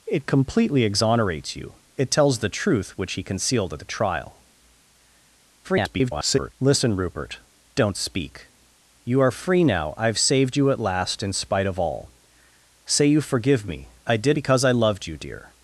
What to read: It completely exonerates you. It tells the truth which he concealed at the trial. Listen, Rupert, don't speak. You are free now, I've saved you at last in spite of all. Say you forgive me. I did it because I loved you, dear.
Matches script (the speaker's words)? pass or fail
fail